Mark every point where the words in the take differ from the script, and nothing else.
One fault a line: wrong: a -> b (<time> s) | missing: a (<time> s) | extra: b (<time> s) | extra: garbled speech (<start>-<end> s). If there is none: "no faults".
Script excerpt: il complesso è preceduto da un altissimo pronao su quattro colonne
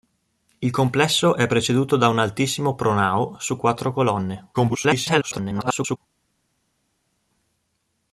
extra: garbled speech (4.5-6.0 s)